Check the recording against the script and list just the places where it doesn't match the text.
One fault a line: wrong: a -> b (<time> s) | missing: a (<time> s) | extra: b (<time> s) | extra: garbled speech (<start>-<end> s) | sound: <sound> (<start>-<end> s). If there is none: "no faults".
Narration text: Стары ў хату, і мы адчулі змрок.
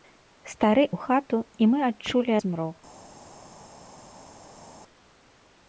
no faults